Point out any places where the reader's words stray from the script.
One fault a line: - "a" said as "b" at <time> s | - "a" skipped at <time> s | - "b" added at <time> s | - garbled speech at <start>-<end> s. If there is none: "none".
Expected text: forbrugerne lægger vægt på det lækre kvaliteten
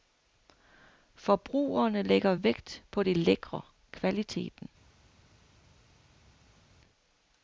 none